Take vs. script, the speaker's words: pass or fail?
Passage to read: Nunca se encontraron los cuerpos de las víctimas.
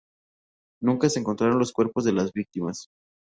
pass